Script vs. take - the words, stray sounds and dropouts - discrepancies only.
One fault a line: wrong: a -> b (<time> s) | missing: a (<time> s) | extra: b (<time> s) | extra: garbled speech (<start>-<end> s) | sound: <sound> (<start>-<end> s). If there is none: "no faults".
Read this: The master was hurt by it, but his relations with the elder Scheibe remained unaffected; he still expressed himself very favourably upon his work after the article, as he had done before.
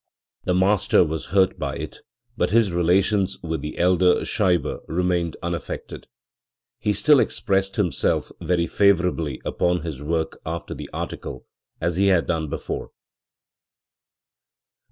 no faults